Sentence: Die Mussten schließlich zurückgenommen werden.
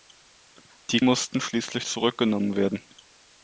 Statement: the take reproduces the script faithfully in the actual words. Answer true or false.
true